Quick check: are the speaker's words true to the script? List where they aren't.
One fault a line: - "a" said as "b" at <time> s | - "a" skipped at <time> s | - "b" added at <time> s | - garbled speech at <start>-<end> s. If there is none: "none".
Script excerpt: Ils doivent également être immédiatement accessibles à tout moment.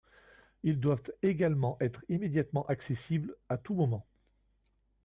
none